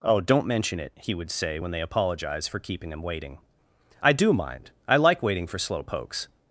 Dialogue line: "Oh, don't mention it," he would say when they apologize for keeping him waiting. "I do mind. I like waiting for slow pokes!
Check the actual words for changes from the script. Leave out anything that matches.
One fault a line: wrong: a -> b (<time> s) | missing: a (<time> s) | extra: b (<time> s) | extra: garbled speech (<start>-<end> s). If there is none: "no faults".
no faults